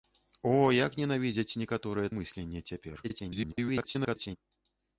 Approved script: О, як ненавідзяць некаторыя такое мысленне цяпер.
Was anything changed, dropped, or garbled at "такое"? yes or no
yes